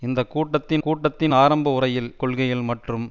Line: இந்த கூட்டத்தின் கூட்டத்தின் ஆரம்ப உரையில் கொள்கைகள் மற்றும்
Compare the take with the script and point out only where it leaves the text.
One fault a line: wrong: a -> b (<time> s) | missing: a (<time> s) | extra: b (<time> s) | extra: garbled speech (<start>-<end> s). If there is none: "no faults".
no faults